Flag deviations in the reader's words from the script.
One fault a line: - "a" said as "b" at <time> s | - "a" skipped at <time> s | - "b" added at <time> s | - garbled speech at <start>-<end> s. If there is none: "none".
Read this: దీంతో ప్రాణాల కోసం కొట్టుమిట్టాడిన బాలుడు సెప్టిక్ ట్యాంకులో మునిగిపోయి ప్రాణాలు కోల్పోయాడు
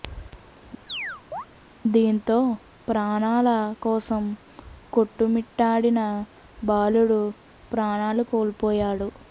- "సెప్టిక్ ట్యాంకులో మునిగిపోయి" skipped at 7.2 s